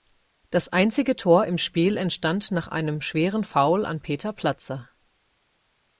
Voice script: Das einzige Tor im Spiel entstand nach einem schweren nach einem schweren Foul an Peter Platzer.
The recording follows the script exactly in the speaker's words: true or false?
false